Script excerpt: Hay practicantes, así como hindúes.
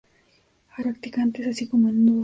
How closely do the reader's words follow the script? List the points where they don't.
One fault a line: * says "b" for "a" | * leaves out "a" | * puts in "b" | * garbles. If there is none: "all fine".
all fine